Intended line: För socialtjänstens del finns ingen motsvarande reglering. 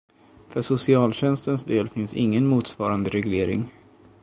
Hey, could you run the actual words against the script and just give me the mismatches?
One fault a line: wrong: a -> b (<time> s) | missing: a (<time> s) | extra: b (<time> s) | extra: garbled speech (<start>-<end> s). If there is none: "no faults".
no faults